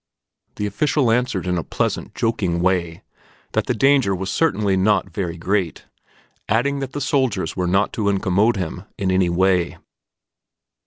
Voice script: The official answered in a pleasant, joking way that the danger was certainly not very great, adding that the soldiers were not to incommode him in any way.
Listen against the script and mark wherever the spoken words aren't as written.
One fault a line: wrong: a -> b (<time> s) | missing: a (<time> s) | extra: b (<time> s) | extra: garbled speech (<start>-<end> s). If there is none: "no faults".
no faults